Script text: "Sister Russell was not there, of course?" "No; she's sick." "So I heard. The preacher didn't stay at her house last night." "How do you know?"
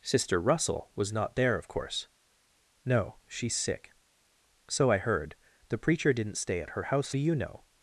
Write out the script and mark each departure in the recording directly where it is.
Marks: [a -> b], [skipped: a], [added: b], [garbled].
"Sister Russell was not there, of course?" "No; she's sick." "So I heard. The preacher didn't stay at her house [skipped: last night." "How] do you know?"